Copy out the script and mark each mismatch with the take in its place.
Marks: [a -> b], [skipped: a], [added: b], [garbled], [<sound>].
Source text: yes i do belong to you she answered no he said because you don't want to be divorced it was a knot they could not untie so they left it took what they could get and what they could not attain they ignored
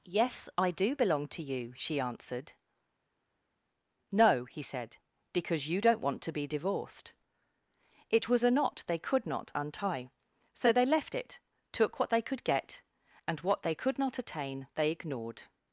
yes i do belong to you she answered no he said because you don't want to be divorced it was a knot they could not untie so they left it took what they could get and what they could not attain they ignored